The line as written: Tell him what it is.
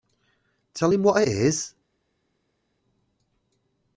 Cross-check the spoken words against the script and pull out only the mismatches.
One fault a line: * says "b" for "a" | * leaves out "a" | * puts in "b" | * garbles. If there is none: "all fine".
all fine